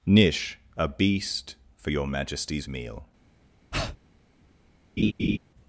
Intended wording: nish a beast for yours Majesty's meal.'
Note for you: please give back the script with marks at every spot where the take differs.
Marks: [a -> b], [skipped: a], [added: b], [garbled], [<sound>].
nish a beast for [yours -> your] Majesty's meal.' [breath] [laugh]